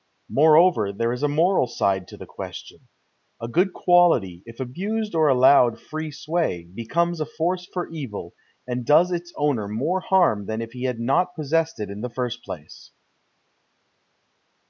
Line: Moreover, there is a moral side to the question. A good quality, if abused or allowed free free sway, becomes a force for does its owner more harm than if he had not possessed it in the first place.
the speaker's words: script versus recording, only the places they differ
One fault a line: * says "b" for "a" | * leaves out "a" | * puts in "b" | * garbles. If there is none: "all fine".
* leaves out "free"
* puts in "evil and"